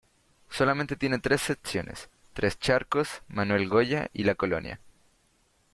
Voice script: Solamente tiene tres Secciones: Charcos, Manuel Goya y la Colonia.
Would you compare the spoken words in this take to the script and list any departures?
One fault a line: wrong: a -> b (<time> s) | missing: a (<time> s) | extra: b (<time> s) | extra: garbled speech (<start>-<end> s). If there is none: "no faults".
extra: Tres (2.3 s)